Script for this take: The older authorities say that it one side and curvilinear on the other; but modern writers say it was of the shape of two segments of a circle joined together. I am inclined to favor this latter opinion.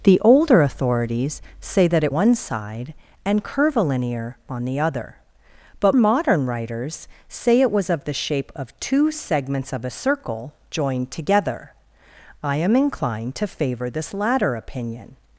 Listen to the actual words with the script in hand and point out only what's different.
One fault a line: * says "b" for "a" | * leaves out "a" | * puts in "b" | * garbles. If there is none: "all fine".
all fine